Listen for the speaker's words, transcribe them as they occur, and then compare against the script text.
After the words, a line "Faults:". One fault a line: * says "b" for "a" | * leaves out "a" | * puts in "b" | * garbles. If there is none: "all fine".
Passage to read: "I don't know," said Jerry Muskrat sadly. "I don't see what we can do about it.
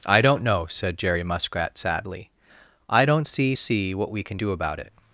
"I don't know," said Jerry Muskrat sadly. "I don't see see what we can do about it.
Faults:
* puts in "see"